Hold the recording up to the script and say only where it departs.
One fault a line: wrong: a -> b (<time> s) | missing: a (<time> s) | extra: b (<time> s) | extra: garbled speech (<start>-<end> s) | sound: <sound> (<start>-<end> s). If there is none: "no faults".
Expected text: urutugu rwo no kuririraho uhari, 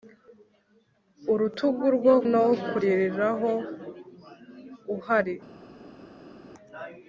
no faults